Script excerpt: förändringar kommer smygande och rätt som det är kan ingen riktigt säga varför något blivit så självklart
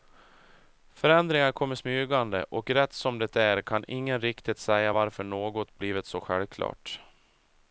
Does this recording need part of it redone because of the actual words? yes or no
no